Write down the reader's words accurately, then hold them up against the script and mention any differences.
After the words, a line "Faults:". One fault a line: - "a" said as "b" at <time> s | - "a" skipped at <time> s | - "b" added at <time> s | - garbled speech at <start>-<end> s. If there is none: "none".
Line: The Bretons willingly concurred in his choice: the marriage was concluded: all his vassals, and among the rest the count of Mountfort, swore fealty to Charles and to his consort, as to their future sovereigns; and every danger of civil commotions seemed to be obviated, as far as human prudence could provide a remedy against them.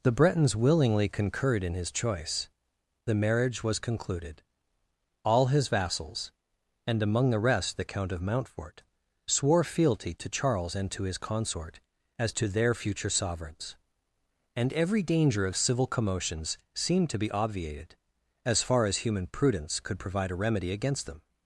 The Bretons willingly concurred in his choice: the marriage was concluded: all his vassals, and among the rest the count of Mountfort, swore fealty to Charles and to his consort, as to their future sovereigns; and every danger of civil commotions seemed to be obviated, as far as human prudence could provide a remedy against them.
Faults:
none